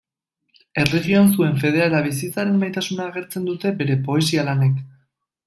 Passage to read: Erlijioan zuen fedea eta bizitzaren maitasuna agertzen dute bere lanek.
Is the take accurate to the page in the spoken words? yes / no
no